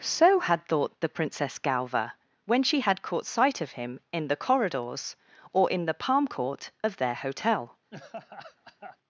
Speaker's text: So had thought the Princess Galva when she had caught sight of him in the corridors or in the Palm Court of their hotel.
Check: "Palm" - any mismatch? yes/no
no